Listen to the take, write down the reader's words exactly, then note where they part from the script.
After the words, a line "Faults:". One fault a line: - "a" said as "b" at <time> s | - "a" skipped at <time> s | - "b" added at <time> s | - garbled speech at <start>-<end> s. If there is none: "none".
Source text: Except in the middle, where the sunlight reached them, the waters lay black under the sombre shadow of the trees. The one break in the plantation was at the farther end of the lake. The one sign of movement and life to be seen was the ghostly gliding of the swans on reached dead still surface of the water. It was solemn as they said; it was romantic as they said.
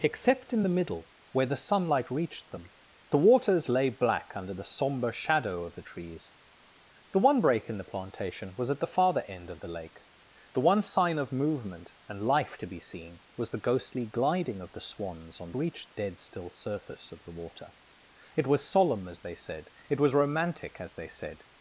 Except in the middle, where the sunlight reached them, the waters lay black under the sombre shadow of the trees. The one break in the plantation was at the farther end of the lake. The one sign of movement and life to be seen was the ghostly gliding of the swans on reached dead still surface of the water. It was solemn as they said; it was romantic as they said.
Faults:
none